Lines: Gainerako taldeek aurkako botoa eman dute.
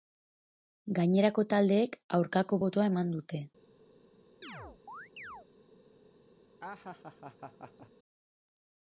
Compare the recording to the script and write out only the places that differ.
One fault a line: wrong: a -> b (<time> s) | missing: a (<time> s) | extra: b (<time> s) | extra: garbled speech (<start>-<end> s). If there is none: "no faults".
no faults